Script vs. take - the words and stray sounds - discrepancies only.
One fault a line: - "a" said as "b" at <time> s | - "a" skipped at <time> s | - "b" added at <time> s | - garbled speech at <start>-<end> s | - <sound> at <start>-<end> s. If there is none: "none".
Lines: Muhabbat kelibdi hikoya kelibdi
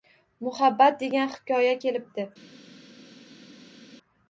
- "kelibdi" said as "degan" at 1.0 s